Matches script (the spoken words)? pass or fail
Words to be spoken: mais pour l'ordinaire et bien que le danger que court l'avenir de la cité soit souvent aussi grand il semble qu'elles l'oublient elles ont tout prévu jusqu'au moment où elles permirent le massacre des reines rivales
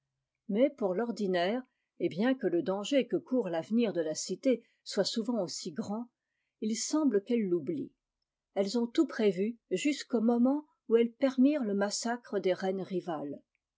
pass